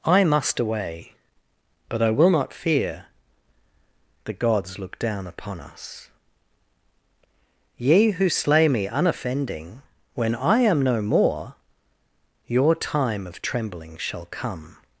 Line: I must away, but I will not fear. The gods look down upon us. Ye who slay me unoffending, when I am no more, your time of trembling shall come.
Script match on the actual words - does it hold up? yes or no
yes